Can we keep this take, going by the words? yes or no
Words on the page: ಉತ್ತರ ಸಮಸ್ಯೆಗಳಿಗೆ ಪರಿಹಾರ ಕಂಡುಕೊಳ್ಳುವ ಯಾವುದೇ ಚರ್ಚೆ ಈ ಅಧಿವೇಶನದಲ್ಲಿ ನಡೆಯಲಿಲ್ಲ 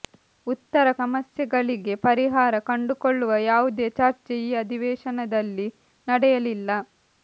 yes